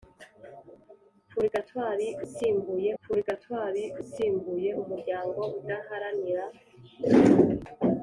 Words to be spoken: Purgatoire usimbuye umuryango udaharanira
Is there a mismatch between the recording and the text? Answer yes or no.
yes